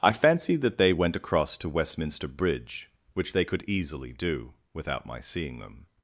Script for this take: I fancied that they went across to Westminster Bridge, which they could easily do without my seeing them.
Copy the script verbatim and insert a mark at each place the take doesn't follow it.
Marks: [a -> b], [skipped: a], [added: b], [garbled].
I fancied that they went across to Westminster Bridge, which they could easily do without my seeing them.